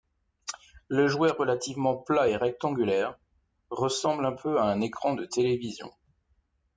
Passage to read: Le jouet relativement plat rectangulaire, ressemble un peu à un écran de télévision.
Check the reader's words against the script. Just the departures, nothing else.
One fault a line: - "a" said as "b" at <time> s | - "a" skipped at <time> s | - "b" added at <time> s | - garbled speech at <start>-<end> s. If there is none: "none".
- "et" added at 2.3 s